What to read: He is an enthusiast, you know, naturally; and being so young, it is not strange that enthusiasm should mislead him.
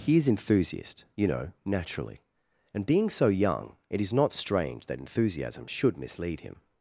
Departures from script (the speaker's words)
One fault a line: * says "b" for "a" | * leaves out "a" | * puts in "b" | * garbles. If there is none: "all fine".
* leaves out "an"